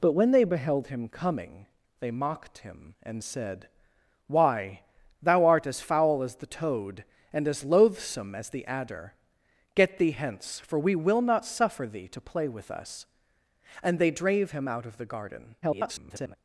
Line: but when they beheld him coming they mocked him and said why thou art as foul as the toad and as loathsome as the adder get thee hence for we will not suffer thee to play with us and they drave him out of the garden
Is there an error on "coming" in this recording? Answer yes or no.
no